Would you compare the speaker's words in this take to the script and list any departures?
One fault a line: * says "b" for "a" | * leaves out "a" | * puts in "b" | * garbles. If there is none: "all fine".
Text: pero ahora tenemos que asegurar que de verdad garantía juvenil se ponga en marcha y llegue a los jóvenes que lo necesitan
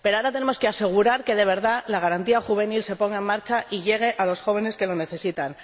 * puts in "la"